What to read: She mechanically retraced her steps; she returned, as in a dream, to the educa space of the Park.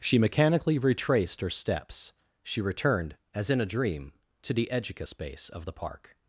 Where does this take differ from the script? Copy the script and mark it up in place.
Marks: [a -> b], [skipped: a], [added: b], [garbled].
She mechanically retraced her steps; she returned, as in a dream, to the educa space of the Park.